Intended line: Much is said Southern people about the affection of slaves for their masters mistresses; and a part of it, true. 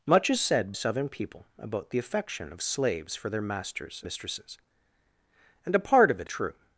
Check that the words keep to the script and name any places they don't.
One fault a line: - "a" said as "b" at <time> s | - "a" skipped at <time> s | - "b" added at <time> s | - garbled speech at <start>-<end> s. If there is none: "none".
none